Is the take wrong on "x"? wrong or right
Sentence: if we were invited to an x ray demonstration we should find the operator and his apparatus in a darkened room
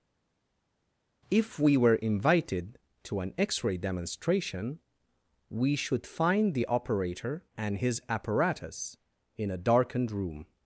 right